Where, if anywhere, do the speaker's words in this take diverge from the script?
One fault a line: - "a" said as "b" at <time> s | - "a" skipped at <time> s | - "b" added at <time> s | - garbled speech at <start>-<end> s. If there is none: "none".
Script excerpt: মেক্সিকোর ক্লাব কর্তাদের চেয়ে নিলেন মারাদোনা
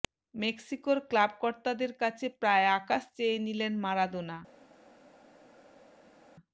- "কাছে প্রায় আকাশ" added at 2.0 s